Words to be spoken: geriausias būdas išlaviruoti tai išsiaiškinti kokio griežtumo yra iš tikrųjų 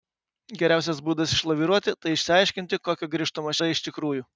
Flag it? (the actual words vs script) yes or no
no